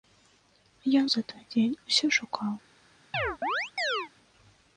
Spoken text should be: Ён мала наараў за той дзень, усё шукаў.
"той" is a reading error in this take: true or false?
false